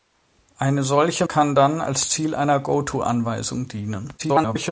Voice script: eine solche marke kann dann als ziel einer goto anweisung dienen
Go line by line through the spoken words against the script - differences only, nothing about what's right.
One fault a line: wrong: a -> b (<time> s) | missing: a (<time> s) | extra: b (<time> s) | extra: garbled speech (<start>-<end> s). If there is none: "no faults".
missing: marke (1.3 s)
extra: garbled speech (4.2-4.7 s)